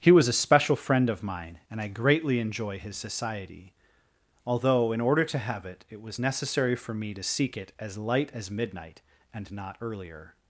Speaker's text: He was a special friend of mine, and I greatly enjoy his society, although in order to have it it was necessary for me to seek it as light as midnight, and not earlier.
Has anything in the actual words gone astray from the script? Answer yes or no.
no